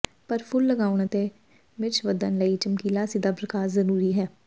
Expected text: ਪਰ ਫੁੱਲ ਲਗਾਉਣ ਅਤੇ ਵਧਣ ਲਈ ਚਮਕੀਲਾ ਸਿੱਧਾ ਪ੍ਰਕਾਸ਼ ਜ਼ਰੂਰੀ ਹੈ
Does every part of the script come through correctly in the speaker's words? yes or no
no